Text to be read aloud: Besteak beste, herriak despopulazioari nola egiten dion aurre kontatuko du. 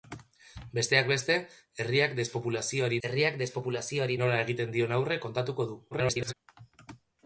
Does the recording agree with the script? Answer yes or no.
no